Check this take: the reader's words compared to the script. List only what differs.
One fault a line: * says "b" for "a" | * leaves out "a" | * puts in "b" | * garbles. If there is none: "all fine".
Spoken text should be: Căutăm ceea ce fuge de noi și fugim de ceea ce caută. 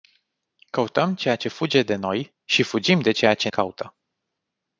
all fine